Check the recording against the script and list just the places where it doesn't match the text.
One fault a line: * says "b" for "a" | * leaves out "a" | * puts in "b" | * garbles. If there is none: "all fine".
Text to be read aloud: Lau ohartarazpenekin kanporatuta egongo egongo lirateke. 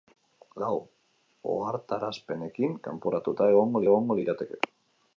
all fine